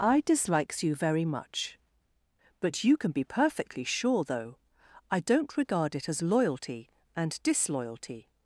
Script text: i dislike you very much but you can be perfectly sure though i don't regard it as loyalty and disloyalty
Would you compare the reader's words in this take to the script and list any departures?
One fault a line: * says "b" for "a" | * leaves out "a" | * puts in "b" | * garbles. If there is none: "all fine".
* says "dislikes" for "dislike"